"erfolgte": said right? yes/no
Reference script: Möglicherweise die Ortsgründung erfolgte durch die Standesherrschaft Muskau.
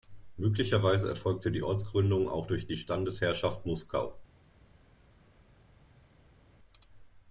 no